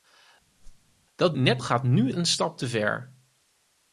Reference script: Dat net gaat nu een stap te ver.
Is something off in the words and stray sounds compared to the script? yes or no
yes